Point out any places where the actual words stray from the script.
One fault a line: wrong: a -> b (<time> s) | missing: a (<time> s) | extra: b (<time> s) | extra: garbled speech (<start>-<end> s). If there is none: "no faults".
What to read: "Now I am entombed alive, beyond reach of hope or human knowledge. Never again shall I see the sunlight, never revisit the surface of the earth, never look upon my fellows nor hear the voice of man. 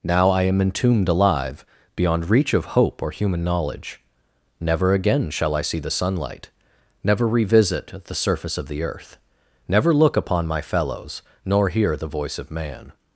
no faults